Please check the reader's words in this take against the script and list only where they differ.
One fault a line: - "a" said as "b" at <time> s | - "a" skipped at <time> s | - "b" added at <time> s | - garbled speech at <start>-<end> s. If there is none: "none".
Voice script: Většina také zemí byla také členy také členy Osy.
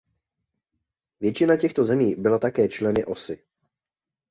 - "také" said as "těchto" at 1.6 s
- "také členy" skipped at 3.1 s